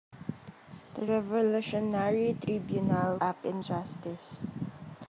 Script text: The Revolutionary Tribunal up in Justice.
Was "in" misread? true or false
false